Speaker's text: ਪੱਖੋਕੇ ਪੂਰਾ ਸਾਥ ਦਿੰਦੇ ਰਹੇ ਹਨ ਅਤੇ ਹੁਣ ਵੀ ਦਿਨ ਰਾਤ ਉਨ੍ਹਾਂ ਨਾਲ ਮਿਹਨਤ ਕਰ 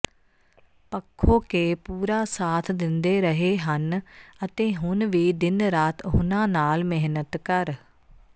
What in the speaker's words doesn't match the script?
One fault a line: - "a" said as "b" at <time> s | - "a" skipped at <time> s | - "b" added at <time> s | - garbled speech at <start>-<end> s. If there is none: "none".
none